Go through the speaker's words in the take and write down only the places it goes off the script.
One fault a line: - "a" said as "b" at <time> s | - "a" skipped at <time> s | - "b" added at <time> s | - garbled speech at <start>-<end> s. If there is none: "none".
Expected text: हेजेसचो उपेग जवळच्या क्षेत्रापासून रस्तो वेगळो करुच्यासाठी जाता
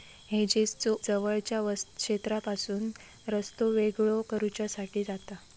- "उपेग" skipped at 0.9 s